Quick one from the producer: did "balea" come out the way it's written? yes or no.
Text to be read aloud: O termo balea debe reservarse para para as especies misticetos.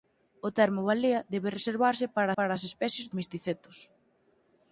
yes